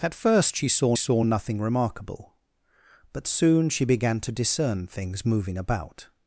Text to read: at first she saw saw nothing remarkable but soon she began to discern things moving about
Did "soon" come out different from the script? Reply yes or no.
no